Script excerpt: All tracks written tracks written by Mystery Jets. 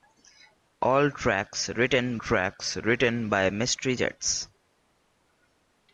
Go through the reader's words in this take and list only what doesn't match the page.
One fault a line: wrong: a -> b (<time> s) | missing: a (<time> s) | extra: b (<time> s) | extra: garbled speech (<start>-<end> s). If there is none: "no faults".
no faults